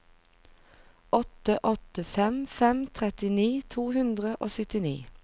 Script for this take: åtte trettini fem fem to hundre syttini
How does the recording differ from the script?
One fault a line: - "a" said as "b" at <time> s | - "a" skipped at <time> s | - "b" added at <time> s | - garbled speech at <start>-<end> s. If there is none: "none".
- "trettini" said as "åtte" at 1.6 s
- "trettini" added at 3.0 s
- "og" added at 4.4 s